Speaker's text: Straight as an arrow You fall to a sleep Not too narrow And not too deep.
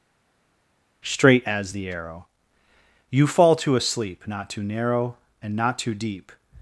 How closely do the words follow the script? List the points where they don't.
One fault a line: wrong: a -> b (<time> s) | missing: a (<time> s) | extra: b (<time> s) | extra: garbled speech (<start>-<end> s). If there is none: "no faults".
wrong: an -> the (1.7 s)